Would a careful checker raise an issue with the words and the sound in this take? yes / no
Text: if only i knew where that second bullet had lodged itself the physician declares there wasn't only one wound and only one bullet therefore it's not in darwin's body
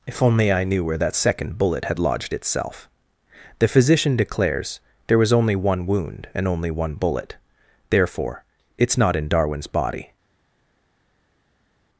yes